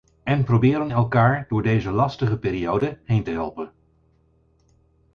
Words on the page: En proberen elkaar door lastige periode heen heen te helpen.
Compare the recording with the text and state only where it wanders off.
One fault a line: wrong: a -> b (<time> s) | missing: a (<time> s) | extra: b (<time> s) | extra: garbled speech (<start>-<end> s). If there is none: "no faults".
extra: deze (1.6 s)
missing: heen (3.2 s)